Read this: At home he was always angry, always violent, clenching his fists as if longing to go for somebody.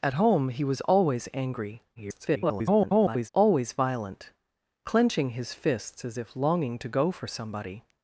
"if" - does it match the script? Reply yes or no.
yes